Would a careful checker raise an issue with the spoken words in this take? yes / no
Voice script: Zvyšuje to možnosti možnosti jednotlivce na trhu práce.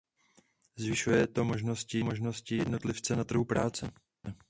no